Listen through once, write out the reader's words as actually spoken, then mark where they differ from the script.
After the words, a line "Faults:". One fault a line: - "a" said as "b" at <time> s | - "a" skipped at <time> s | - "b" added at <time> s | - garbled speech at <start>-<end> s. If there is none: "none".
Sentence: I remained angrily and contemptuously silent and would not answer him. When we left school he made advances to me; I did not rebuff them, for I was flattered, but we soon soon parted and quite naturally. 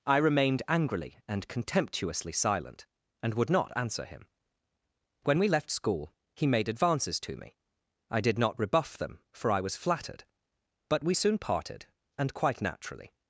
I remained angrily and contemptuously silent and would not answer him. When we left school he made advances to me; I did not rebuff them, for I was flattered, but we soon parted and quite naturally.
Faults:
- "soon" skipped at 11.4 s